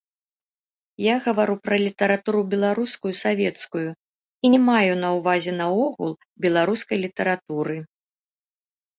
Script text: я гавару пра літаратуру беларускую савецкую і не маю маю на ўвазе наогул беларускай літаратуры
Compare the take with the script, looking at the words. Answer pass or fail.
fail